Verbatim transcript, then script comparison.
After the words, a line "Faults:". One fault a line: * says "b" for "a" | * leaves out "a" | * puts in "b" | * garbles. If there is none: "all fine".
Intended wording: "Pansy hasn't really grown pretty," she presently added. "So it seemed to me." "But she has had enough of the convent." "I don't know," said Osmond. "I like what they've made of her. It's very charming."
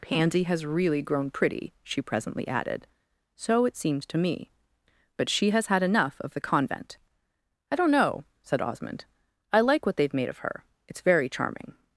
"Pansy has really grown pretty," she presently added. "So it seemed to me." "But she has had enough of the convent." "I don't know," said Osmond. "I like what they've made of her. It's very charming."
Faults:
* says "has" for "hasn't"